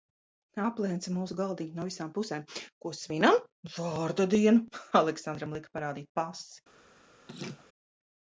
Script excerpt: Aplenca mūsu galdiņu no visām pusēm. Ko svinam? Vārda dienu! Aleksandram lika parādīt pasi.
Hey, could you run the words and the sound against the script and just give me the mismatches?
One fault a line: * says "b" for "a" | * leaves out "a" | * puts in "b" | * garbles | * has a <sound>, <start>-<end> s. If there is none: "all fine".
* has a laugh, 7.3-7.7 s